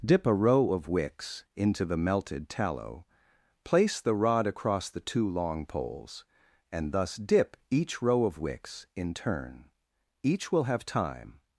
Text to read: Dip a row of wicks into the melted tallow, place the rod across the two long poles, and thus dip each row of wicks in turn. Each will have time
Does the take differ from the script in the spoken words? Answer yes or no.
no